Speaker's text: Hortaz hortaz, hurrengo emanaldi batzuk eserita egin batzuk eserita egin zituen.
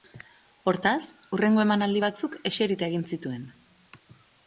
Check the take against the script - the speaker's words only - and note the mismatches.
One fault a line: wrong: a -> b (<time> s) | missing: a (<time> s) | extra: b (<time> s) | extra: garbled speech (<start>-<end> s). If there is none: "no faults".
missing: hortaz (1.0 s)
missing: batzuk eserita egin (3.1 s)